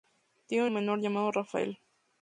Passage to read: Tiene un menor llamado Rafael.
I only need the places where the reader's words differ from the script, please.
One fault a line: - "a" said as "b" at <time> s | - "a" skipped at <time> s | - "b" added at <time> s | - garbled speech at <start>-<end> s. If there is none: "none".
none